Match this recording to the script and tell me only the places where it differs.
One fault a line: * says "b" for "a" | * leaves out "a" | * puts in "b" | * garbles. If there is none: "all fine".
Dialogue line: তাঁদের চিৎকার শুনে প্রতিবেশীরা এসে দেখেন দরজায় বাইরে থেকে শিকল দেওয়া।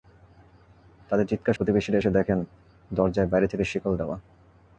* leaves out "শুনে"